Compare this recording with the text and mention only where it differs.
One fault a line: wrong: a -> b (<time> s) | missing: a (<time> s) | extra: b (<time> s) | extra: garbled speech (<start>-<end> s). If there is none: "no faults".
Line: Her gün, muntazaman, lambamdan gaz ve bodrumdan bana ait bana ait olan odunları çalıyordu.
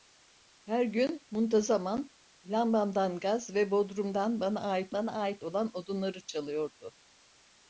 no faults